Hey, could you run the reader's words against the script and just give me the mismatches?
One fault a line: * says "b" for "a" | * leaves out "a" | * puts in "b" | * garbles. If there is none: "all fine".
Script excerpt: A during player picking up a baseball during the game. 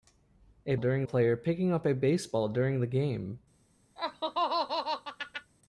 all fine